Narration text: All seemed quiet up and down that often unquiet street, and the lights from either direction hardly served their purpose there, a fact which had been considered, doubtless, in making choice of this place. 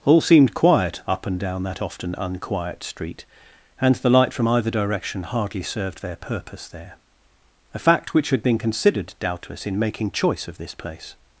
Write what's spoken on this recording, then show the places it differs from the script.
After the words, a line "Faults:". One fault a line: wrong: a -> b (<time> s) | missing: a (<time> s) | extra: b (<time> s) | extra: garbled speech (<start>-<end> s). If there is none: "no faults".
All seemed quiet up and down that often unquiet street, and the light from either direction hardly served their purpose there, a fact which had been considered, doubtless, in making choice of this place.
Faults:
wrong: lights -> light (4.1 s)